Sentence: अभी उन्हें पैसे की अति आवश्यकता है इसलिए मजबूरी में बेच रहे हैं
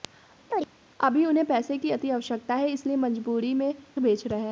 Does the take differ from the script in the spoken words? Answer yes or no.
no